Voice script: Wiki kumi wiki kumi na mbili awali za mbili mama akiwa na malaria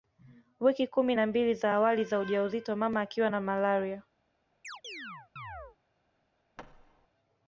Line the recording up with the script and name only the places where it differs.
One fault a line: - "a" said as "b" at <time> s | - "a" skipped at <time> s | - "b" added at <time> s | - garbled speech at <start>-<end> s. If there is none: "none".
- "wiki kumi" skipped at 1.1 s
- "za" added at 1.5 s
- "mbili" said as "ujauzito" at 2.2 s